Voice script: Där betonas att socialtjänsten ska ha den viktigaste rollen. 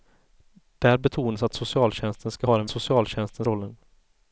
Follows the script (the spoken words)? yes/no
no